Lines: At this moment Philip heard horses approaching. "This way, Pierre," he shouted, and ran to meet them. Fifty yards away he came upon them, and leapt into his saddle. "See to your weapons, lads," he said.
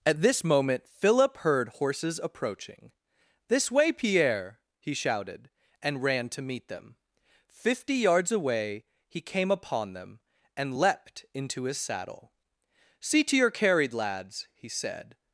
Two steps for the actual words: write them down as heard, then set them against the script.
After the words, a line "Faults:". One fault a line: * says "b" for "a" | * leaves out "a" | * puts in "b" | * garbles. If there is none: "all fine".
At this moment Philip heard horses approaching. "This way, Pierre," he shouted, and ran to meet them. Fifty yards away he came upon them, and leapt into his saddle. "See to your carried, lads," he said.
Faults:
* says "carried" for "weapons"